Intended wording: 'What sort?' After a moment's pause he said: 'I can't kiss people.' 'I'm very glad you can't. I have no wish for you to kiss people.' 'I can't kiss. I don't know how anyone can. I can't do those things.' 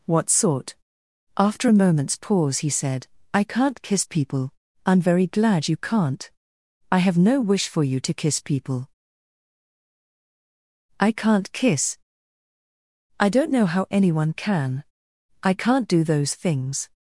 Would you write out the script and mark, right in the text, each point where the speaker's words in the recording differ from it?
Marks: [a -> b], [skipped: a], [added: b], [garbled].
'What sort?' After a moment's pause he said: 'I can't kiss people.' 'I'm very glad you can't. I have no wish for you to kiss people.' 'I can't kiss. I don't know how anyone can. I can't do those things.'